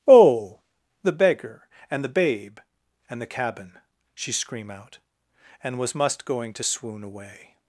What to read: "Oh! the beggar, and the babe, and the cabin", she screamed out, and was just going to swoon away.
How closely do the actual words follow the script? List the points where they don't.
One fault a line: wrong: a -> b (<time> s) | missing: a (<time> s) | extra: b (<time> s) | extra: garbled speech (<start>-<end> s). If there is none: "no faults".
wrong: screamed -> scream (4.3 s)
wrong: just -> must (6.0 s)